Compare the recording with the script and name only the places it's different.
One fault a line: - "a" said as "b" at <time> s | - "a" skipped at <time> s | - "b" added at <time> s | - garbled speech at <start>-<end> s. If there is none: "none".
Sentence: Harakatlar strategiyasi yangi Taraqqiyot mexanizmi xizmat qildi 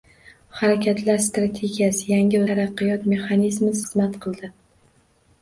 none